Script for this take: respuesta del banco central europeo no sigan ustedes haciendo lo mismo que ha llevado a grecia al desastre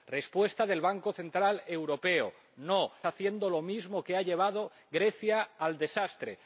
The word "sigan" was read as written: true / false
false